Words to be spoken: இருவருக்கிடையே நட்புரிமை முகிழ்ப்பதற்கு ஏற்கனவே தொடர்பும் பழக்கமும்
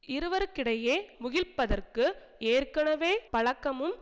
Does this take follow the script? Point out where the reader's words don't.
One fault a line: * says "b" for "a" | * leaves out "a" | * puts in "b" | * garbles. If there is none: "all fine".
* leaves out "நட்புரிமை"
* leaves out "தொடர்பும்"